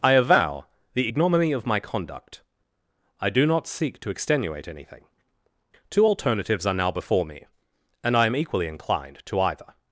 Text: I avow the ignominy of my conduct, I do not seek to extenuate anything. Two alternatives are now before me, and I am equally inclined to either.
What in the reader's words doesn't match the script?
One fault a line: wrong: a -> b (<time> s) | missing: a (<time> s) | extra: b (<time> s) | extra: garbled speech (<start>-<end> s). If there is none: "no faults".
no faults